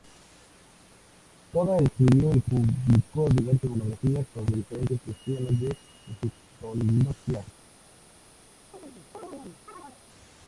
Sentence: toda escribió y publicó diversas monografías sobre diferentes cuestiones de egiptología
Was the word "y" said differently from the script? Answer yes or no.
no